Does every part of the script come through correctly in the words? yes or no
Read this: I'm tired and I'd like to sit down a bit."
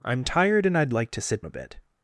no